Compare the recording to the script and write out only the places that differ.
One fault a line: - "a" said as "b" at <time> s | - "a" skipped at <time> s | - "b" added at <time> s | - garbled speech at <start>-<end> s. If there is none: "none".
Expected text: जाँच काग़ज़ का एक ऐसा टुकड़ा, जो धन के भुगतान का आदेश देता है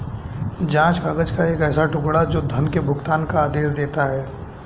none